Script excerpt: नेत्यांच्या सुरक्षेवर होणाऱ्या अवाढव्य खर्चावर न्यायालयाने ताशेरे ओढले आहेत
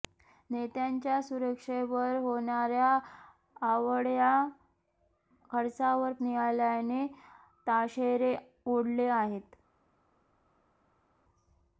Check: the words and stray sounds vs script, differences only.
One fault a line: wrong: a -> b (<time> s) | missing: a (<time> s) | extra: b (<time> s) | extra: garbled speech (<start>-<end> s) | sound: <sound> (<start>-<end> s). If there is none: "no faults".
no faults